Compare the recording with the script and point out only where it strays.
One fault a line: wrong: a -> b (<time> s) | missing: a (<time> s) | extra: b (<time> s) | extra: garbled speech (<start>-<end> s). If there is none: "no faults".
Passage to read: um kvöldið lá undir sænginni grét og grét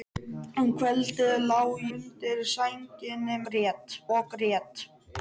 no faults